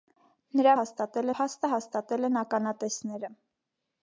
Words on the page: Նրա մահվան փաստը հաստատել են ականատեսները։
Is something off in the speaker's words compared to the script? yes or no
yes